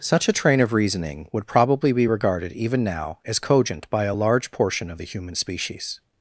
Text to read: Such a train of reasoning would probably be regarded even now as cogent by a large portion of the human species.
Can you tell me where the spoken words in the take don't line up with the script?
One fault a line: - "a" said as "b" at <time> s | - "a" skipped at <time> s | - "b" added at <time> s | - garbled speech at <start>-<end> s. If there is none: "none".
none